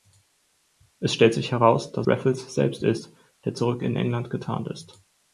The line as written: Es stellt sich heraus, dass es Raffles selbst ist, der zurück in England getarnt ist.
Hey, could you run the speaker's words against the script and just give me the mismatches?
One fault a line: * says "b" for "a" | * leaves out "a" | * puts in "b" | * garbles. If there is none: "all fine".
* leaves out "es"